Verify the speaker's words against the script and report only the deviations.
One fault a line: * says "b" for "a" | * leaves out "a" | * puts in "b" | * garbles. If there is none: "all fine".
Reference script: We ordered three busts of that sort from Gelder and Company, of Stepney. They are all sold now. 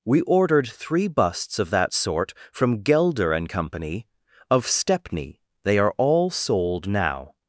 all fine